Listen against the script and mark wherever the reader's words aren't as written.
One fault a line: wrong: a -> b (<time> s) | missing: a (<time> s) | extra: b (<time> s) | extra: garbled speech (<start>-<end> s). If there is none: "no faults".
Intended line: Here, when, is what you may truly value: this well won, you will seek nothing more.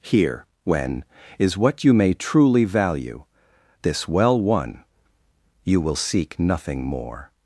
no faults